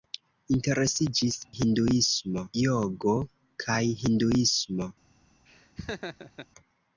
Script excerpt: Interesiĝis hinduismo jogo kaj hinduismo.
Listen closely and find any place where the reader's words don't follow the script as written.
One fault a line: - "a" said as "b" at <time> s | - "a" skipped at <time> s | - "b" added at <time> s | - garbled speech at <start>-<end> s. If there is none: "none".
none